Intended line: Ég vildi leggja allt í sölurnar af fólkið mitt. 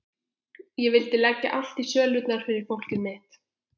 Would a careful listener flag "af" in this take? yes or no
yes